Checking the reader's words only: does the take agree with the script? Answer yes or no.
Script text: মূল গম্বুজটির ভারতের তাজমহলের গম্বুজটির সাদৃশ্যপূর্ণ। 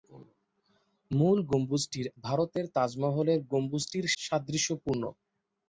yes